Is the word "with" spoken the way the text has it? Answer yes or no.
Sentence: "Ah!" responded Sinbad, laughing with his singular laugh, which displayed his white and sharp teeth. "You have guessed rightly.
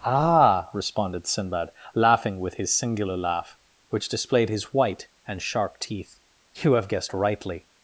yes